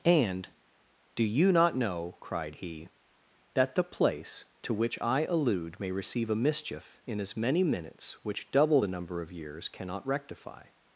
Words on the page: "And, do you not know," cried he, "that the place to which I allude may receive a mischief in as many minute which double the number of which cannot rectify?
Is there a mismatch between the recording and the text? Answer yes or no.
yes